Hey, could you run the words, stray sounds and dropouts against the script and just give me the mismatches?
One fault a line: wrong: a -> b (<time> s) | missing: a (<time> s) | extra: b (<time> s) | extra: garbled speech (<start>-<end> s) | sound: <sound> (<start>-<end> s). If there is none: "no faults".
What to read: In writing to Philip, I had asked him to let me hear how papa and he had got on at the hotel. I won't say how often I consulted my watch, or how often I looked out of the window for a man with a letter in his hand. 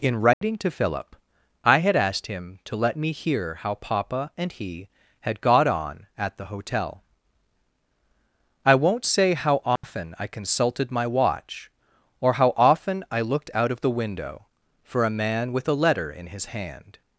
sound: dropout (0.3-0.4 s)
sound: dropout (9.8-9.8 s)